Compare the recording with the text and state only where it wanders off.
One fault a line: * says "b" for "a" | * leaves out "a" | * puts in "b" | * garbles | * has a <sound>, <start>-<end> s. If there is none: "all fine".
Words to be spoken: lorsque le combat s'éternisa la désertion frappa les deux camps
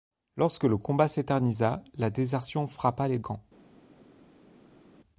* leaves out "deux"